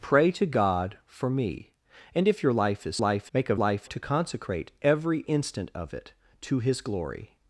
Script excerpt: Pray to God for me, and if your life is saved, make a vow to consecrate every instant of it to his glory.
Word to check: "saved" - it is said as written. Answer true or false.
false